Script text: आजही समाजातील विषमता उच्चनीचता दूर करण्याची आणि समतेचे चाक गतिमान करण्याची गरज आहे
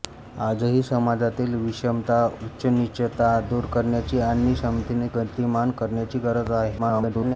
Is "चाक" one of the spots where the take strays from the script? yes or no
yes